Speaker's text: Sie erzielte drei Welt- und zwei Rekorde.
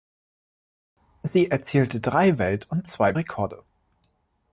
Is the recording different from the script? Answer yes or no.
no